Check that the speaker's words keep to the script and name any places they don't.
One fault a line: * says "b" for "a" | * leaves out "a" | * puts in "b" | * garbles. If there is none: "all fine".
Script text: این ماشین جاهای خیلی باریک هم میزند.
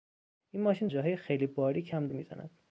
all fine